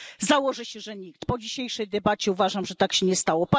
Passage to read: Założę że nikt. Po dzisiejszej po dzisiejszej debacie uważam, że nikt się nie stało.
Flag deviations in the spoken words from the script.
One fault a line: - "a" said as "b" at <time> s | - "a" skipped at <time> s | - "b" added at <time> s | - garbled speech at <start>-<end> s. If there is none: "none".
- "się" added at 0.7 s
- "po dzisiejszej" skipped at 1.9 s
- "nikt" said as "tak" at 2.8 s